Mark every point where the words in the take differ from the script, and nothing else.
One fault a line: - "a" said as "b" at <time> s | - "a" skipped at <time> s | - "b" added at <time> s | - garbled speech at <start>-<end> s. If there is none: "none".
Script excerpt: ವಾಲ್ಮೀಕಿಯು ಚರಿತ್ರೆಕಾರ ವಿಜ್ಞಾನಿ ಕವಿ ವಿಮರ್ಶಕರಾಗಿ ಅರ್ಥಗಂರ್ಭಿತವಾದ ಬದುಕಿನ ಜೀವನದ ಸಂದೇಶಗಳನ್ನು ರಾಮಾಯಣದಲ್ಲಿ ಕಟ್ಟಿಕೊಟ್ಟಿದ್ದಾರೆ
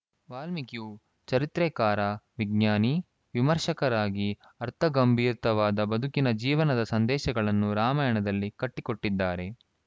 - "ಕವಿ" skipped at 2.9 s